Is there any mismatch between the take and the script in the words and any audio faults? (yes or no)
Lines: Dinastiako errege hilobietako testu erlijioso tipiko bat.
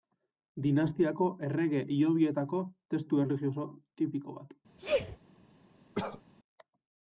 yes